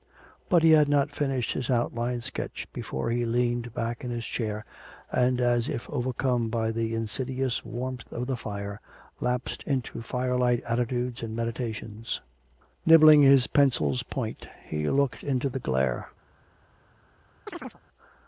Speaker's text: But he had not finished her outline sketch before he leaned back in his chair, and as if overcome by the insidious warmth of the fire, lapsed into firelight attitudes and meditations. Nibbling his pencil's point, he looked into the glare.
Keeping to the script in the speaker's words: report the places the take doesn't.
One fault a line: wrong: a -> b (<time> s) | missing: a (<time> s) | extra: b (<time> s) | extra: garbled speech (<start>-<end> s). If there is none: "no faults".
wrong: her -> his (1.5 s)